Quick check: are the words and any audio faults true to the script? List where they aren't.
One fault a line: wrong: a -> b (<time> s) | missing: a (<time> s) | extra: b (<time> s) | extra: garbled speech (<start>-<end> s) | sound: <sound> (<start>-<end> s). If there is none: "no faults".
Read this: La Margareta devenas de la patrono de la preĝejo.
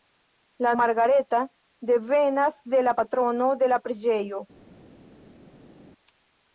no faults